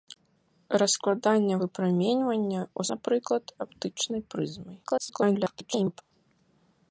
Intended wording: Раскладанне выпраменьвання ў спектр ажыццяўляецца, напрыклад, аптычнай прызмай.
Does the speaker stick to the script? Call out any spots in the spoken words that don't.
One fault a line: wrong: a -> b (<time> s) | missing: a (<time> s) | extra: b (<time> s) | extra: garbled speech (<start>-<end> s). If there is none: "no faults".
missing: спектр ажыццяўляецца (2.8 s)
extra: garbled speech (4.8-6.0 s)